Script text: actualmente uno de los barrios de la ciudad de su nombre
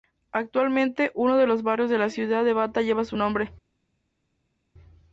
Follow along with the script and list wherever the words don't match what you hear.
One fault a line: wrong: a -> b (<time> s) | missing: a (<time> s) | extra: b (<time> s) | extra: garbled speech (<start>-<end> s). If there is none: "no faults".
extra: bata lleva (2.5 s)